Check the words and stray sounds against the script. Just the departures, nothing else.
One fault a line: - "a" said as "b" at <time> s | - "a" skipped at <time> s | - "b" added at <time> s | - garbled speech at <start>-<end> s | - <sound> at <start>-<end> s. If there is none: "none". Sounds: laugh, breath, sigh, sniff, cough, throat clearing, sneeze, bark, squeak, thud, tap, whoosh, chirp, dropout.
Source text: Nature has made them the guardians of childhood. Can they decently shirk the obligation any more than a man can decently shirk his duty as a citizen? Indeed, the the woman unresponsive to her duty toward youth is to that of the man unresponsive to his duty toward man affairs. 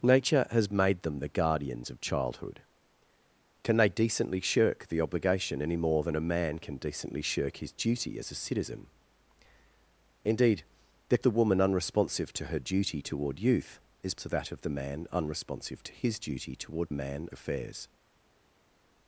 none